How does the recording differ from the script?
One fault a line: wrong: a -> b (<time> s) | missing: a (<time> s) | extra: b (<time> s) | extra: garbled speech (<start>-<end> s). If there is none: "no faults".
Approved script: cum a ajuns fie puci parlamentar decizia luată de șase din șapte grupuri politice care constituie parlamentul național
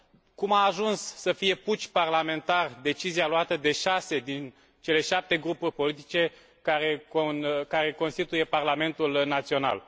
extra: să (1.0 s)
extra: cele (4.8 s)